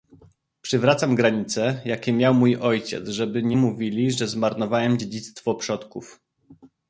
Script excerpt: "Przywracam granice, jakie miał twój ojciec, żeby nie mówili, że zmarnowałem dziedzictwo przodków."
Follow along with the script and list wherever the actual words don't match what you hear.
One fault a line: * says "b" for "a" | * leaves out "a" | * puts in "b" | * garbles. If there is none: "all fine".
* says "mój" for "twój"